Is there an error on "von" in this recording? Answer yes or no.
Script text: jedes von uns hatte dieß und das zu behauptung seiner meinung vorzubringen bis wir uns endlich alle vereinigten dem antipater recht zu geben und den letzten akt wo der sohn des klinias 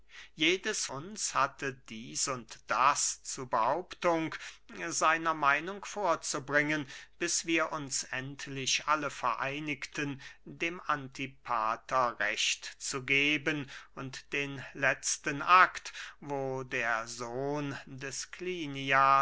yes